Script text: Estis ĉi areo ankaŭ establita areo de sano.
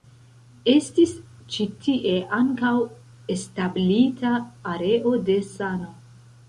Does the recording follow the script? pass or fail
fail